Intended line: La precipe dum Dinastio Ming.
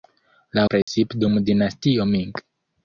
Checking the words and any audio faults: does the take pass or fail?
fail